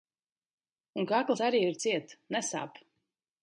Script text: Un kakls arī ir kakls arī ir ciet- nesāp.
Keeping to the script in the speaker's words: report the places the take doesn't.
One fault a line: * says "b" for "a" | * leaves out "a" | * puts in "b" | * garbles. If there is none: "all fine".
* leaves out "kakls arī ir"